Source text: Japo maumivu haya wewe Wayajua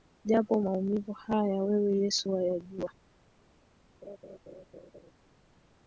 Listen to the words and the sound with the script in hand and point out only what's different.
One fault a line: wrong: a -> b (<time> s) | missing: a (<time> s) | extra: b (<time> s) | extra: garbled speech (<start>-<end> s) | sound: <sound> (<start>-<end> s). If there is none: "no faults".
extra: Yesu (2.0 s)
sound: laugh (4.0-5.1 s)